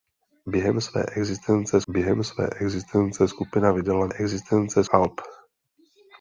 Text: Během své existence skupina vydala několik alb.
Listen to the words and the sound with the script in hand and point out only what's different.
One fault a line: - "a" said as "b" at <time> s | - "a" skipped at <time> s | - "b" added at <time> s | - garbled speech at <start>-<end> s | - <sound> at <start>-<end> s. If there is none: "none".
- "během své existence" added at 1.9 s
- "několik" said as "existence" at 4.1 s